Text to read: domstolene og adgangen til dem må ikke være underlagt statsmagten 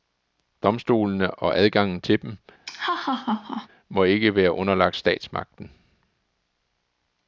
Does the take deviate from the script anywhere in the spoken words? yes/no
no